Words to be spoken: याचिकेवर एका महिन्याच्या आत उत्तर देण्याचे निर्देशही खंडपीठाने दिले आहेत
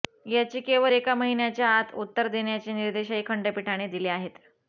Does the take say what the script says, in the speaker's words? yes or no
yes